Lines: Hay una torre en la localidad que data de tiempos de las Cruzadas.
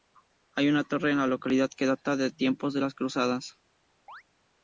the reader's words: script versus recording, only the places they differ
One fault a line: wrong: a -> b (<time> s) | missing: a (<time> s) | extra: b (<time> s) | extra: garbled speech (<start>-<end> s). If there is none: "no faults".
no faults